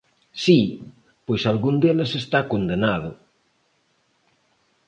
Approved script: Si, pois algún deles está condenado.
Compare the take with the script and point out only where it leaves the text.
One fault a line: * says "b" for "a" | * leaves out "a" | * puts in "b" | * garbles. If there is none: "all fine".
all fine